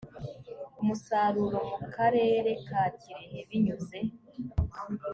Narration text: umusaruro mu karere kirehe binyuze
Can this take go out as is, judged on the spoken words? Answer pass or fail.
fail